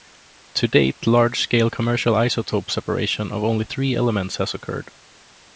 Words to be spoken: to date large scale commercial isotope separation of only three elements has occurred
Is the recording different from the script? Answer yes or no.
no